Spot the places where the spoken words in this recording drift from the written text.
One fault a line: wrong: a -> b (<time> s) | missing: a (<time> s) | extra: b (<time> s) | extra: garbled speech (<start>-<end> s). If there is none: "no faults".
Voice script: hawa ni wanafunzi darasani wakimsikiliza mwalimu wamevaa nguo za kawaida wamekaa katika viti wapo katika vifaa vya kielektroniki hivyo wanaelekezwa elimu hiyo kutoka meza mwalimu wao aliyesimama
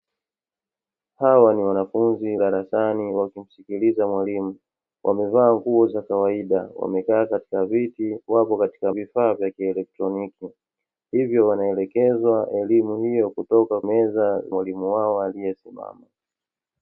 no faults